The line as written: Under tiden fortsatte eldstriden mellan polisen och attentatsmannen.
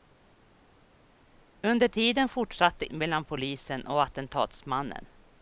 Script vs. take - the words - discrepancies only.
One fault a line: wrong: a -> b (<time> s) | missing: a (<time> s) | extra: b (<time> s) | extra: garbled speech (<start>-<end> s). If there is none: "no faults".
missing: eldstriden (2.9 s)